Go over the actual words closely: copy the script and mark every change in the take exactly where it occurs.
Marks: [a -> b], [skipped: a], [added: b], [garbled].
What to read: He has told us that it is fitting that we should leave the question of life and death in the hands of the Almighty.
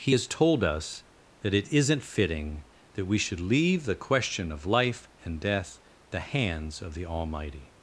He has told us that it [is -> isn't] fitting that we should leave the question of life and death [skipped: in] the hands of the Almighty.